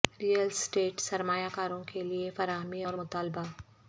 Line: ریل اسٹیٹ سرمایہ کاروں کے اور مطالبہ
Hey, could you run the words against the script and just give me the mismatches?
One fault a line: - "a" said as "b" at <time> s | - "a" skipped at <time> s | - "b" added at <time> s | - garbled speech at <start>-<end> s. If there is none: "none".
- "لئے فراہمی" added at 2.0 s